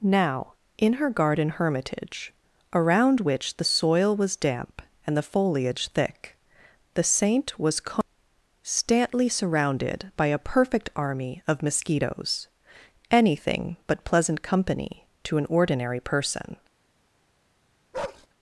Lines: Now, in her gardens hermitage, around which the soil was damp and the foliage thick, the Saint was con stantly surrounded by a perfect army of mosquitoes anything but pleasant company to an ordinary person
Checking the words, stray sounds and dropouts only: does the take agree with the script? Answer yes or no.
no